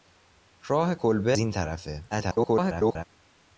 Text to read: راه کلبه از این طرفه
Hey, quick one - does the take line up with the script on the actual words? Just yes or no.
no